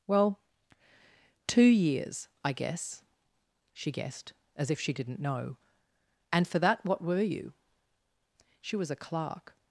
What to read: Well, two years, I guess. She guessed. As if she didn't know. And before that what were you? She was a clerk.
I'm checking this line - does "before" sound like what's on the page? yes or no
no